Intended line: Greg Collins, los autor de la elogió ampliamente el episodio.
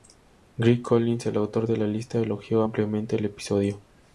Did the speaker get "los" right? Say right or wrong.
wrong